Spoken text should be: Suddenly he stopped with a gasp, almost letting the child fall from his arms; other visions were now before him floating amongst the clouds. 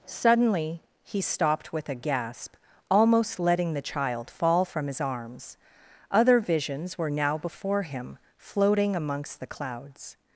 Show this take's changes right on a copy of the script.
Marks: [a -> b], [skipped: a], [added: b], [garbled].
Suddenly he stopped with a gasp, almost letting the child fall from his arms; other visions were now before him floating amongst the clouds.